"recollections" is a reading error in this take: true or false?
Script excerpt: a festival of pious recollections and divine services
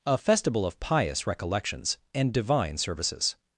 false